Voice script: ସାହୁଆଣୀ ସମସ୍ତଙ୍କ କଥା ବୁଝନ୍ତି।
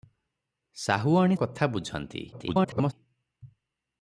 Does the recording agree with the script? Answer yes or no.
no